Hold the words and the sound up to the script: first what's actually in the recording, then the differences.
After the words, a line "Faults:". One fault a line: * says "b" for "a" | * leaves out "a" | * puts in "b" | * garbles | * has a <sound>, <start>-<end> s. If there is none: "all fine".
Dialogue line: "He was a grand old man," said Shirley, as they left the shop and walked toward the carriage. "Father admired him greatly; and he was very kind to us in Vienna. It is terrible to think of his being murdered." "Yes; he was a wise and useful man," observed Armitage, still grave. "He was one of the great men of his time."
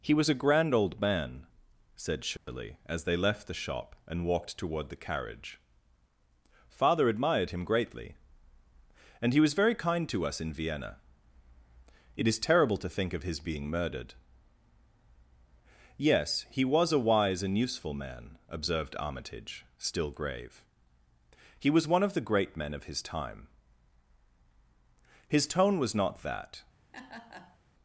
"He was a grand old man," said Shirley, as they left the shop and walked toward the carriage. "Father admired him greatly; and he was very kind to us in Vienna. It is terrible to think of his being murdered." "Yes; he was a wise and useful man," observed Armitage, still grave. "He was one of the great men of his time." His tone was not that
Faults:
* has a dropout, 2.4-2.5 s
* puts in "His tone was not that"
* has a laugh, 26.9-27.6 s